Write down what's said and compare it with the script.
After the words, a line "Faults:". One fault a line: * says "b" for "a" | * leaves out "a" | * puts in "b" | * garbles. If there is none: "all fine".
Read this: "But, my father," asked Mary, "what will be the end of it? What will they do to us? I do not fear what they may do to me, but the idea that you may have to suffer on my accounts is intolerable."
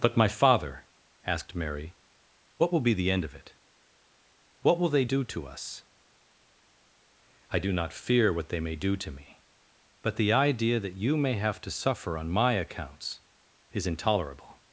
"But, my father," asked Mary, "what will be the end of it? What will they do to us? I do not fear what they may do to me, but the idea that you may have to suffer on my accounts is intolerable."
Faults:
all fine